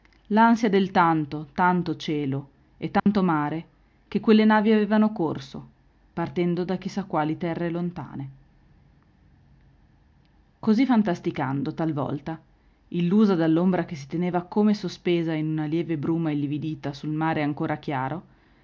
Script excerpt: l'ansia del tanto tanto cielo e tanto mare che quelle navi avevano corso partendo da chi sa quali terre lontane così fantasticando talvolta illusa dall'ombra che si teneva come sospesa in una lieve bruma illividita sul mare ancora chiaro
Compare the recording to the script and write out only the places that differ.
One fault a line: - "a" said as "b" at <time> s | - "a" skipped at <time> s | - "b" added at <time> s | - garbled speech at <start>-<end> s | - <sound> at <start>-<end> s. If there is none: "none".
- dropout at 3.0-3.1 s